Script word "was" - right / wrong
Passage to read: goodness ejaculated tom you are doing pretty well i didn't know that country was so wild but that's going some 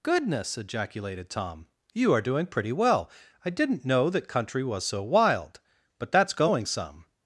right